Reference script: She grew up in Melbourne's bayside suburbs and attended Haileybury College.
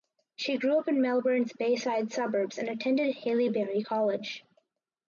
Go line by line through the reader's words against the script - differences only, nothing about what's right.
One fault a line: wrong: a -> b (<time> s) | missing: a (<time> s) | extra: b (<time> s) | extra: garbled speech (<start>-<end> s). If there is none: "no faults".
no faults